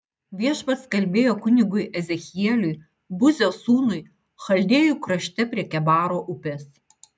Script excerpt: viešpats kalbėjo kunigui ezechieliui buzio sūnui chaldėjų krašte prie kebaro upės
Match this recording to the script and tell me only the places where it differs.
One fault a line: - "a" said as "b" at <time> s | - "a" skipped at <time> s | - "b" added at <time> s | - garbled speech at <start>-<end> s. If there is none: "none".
none